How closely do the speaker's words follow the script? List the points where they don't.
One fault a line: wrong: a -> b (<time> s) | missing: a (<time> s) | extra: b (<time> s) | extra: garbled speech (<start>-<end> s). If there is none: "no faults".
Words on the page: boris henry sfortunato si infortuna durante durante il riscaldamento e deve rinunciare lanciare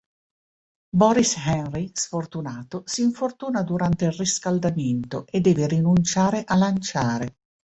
missing: durante (4.1 s)
extra: a (6.5 s)